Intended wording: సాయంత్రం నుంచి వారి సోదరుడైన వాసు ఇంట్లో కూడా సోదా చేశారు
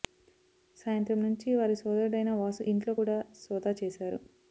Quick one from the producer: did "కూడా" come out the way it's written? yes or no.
yes